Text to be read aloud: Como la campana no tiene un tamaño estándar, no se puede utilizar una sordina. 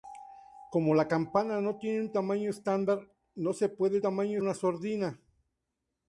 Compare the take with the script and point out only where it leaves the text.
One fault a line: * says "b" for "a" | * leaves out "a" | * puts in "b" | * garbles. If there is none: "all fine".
* says "tamaño" for "utilizar"